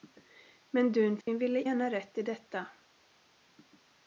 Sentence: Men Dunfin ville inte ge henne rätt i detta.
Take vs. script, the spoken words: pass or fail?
fail